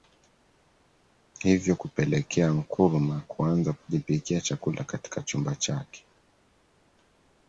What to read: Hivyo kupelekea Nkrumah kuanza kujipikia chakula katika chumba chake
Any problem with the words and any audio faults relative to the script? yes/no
no